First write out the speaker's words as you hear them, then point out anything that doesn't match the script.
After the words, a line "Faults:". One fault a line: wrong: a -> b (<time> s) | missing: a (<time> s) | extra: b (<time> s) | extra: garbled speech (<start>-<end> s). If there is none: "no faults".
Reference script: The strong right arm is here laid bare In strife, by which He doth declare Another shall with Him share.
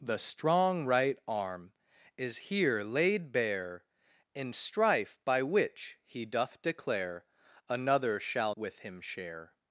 The strong right arm is here laid bare In strife, by which He doth declare Another shall with Him share.
Faults:
no faults